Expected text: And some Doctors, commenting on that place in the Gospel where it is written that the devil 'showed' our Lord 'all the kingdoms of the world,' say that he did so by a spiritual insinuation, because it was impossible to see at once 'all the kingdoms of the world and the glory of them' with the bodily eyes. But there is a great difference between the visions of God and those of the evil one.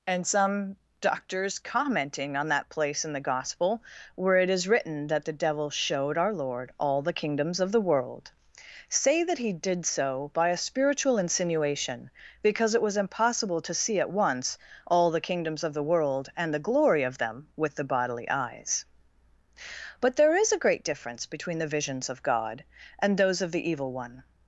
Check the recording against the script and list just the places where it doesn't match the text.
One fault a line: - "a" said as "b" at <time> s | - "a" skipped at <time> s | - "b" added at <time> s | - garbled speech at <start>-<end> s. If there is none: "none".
none